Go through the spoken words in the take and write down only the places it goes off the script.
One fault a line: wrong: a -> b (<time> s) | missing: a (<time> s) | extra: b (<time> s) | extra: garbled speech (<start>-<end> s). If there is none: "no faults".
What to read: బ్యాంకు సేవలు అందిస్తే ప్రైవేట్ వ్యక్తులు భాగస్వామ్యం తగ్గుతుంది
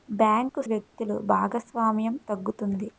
missing: సేవలు అందిస్తే ప్రైవేట్ (0.6 s)